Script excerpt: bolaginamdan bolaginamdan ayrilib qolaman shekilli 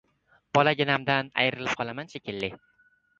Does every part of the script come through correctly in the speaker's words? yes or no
no